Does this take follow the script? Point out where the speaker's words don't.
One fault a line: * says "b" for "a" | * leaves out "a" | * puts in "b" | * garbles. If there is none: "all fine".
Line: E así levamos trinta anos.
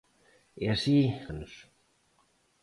* leaves out "levamos trinta"